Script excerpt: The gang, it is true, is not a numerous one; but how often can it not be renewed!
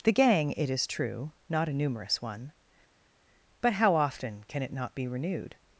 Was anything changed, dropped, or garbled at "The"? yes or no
no